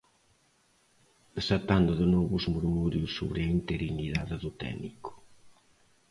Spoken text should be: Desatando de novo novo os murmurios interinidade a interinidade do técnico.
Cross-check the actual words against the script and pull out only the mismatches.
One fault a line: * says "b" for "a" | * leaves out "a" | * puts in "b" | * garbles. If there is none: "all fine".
* leaves out "novo"
* says "sobre" for "interinidade"